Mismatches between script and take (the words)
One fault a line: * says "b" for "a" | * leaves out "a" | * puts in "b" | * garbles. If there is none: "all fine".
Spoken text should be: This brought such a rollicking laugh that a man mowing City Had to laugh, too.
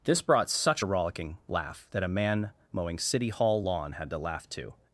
* puts in "Hall lawn"